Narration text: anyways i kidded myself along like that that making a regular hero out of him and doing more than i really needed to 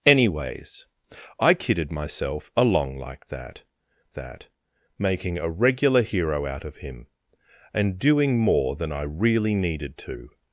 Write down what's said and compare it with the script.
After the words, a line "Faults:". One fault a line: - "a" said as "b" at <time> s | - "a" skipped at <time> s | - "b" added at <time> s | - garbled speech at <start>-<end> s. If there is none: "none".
anyways i kidded myself along like that that making a regular hero out of him and doing more than i really needed to
Faults:
none